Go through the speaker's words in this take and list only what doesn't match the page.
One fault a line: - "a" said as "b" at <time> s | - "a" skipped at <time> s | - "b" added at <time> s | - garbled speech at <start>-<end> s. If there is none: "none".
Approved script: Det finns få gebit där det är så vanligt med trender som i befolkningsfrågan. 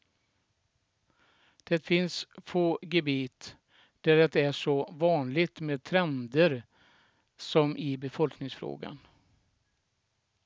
none